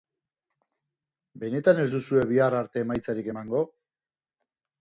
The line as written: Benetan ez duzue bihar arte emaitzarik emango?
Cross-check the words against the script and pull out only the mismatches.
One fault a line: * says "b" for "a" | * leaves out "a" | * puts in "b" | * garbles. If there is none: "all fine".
all fine